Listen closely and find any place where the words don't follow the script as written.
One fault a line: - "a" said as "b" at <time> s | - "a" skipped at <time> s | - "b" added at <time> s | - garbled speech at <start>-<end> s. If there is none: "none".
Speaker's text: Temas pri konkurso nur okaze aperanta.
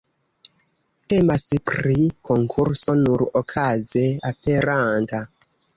none